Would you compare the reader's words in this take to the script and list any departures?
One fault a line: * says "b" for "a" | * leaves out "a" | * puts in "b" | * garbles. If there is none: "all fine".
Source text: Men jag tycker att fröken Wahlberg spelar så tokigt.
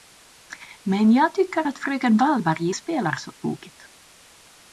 all fine